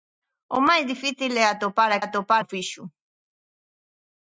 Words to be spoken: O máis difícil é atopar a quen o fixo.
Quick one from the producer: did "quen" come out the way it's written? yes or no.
no